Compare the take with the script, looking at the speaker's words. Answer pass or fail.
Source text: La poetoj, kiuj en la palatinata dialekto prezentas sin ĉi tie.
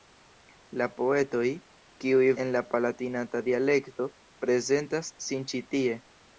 pass